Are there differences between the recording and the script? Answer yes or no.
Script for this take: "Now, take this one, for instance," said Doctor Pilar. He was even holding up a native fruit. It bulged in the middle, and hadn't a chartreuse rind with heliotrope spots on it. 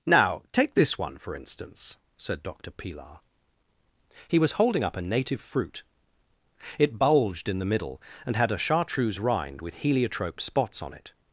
yes